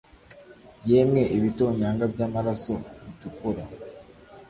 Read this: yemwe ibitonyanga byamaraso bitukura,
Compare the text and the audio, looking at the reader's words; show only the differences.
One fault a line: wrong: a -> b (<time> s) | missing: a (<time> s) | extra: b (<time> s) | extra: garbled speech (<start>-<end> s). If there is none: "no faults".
no faults